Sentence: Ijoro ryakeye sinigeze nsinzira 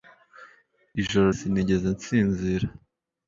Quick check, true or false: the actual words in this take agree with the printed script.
false